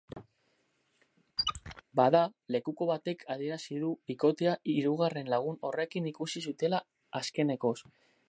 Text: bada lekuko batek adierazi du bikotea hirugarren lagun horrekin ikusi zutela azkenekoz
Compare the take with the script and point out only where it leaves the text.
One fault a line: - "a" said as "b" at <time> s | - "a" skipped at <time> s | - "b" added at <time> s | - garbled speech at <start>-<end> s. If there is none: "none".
none